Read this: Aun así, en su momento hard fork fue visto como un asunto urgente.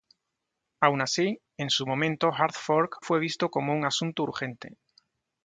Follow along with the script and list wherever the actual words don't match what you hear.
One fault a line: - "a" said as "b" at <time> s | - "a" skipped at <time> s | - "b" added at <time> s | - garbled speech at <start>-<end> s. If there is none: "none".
none